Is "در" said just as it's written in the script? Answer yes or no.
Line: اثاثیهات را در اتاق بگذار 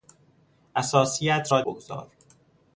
no